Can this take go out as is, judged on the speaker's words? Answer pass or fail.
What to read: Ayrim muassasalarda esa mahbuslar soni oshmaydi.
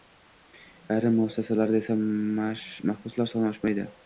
pass